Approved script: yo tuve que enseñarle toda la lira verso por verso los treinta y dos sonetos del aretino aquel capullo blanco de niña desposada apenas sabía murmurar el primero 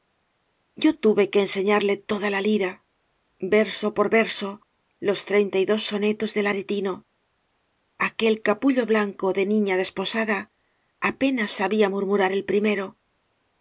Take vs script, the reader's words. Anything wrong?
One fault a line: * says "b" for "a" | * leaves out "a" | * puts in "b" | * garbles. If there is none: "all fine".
all fine